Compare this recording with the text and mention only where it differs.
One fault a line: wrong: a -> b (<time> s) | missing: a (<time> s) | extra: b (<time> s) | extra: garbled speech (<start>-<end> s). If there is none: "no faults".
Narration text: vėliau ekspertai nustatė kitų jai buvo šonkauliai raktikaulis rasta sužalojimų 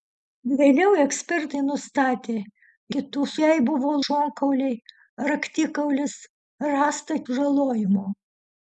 no faults